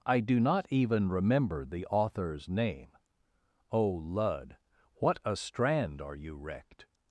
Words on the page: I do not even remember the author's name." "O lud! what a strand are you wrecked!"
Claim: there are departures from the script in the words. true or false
false